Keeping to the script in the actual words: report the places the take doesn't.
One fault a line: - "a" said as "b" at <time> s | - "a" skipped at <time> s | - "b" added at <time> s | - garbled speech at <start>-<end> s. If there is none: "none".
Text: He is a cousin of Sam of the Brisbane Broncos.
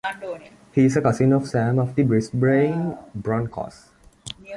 none